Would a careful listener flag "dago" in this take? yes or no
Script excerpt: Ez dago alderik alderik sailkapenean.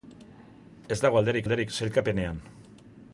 no